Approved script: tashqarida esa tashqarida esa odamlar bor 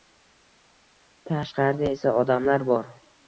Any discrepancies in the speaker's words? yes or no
yes